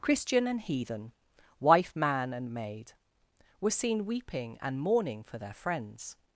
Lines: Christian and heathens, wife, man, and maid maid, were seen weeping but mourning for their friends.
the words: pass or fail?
fail